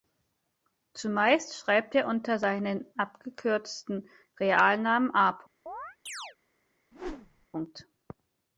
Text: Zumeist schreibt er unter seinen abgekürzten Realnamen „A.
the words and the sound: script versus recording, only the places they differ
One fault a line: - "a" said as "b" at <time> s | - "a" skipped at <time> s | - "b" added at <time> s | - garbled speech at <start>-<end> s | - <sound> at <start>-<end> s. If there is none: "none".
- chirp at 5.7-6.4 s
- whoosh at 6.9-7.5 s